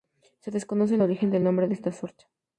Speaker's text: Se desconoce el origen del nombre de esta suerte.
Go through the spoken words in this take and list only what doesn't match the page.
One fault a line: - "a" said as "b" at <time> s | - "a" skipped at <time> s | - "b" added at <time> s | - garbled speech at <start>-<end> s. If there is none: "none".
none